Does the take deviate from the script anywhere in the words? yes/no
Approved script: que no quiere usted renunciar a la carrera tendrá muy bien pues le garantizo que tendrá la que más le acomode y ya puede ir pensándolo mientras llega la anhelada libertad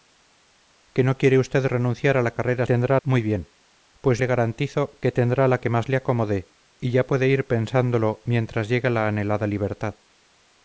no